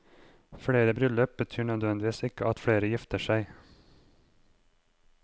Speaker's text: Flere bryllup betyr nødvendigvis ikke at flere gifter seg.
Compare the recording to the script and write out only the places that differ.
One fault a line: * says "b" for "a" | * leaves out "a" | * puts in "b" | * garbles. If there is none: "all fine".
all fine